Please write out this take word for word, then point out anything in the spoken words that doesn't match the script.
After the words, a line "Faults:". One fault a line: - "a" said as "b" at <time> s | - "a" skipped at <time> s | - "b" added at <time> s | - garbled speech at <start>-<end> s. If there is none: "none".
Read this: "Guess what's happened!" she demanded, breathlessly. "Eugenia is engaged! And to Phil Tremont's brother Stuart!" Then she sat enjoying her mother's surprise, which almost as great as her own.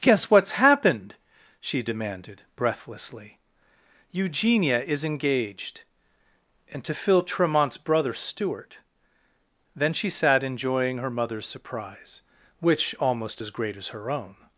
"Guess what's happened!" she demanded, breathlessly. "Eugenia is engaged! And to Phil Tremont's brother Stuart!" Then she sat enjoying her mother's surprise, which almost as great as her own.
Faults:
none